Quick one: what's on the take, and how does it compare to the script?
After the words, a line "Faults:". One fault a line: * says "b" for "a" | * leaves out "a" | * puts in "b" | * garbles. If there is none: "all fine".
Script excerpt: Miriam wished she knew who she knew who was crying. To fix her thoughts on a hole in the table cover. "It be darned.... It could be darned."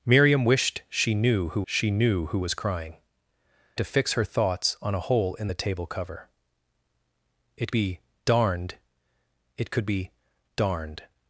Miriam wished she knew who she knew who was crying. To fix her thoughts on a hole in the table cover. "It be darned.... It could be darned."
Faults:
all fine